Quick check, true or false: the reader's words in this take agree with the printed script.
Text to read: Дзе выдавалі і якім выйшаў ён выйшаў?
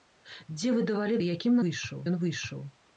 true